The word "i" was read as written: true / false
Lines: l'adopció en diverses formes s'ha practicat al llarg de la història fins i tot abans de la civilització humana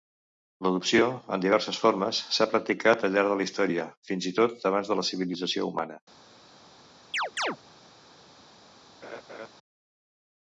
true